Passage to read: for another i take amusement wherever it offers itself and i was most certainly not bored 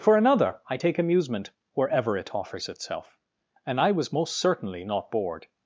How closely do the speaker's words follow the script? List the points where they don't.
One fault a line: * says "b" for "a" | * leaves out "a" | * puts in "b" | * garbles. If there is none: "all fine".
all fine